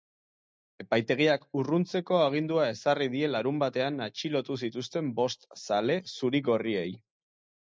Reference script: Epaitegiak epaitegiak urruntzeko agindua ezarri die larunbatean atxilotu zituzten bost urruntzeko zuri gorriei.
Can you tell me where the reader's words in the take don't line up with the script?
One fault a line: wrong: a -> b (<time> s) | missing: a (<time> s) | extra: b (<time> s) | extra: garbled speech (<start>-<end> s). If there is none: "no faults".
missing: epaitegiak (1.4 s)
wrong: urruntzeko -> zale (5.7 s)